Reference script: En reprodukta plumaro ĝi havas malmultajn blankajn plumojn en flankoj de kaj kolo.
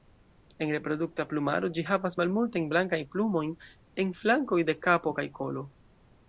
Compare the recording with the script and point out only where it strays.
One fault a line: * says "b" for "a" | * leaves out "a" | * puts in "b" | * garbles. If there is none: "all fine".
* puts in "kapo"